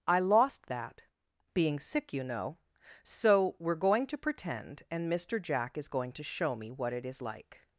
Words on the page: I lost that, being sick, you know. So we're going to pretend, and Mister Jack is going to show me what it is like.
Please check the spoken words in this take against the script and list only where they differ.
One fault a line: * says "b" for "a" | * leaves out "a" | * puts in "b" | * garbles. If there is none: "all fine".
all fine